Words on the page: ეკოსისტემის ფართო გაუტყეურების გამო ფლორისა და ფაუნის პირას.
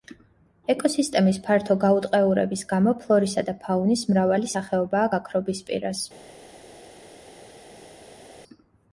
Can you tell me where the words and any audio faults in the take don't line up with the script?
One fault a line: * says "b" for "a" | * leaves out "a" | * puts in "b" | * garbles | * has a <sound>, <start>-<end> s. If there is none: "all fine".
* puts in "მრავალი სახეობაა გაქრობის"